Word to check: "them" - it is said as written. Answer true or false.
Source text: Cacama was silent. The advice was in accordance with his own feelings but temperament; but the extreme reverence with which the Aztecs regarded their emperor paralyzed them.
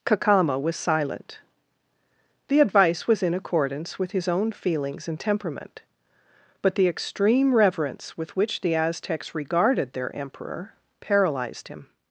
false